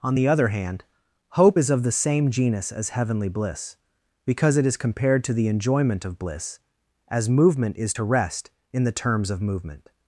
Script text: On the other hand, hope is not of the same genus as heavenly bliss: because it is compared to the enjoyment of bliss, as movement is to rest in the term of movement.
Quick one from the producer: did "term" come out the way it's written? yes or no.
no